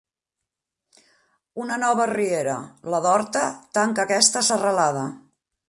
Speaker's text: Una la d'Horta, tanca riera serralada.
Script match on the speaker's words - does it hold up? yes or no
no